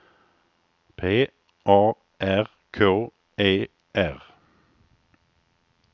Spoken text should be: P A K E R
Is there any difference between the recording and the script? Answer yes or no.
yes